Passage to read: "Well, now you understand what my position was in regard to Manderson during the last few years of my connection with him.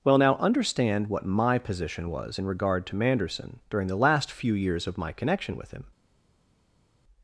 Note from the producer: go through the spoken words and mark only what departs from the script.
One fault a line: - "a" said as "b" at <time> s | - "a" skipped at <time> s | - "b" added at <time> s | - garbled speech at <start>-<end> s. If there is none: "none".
- "you" skipped at 0.3 s